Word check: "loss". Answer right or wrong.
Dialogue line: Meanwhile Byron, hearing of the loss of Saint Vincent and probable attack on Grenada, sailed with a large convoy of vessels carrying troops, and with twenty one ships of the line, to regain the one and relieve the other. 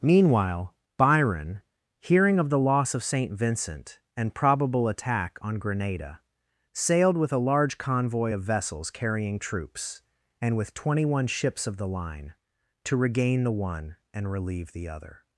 right